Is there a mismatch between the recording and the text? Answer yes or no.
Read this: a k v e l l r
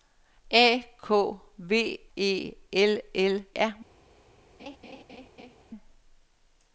no